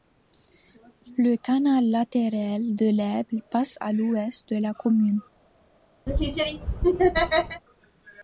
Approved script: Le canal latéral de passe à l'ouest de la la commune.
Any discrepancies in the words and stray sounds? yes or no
yes